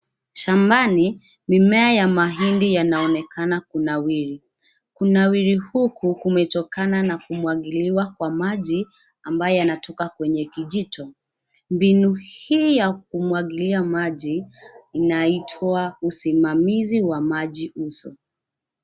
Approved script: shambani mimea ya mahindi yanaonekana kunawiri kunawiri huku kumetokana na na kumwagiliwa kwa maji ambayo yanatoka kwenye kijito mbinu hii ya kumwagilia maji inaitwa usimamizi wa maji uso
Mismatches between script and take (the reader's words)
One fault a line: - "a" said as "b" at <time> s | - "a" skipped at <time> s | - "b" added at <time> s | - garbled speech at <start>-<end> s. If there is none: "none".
- "na" skipped at 7.2 s